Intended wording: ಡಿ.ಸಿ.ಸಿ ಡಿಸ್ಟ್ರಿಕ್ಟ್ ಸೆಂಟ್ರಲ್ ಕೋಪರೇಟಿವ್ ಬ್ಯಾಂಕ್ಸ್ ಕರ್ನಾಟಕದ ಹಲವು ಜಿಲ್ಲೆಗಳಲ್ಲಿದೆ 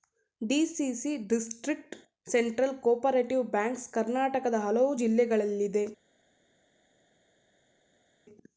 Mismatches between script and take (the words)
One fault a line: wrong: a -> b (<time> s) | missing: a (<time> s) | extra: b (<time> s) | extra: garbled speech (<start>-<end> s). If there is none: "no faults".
no faults